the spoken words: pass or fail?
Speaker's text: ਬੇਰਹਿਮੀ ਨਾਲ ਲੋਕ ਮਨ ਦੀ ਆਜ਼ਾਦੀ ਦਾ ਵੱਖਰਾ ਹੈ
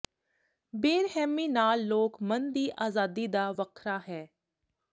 pass